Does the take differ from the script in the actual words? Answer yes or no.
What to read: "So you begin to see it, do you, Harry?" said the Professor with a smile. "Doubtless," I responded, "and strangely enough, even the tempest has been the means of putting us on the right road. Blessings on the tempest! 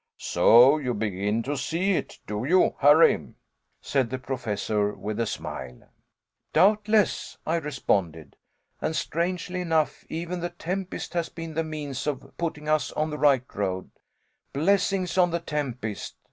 no